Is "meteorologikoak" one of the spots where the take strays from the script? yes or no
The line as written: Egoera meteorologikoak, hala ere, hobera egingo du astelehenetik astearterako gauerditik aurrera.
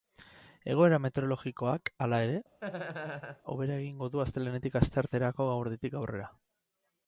no